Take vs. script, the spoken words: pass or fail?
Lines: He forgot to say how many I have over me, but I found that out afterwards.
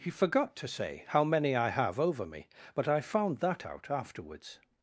pass